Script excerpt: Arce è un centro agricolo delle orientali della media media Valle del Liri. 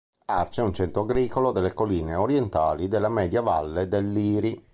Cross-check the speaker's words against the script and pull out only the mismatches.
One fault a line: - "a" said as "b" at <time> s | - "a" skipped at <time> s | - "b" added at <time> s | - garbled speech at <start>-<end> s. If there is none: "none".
- "colline" added at 1.7 s
- "media" skipped at 3.4 s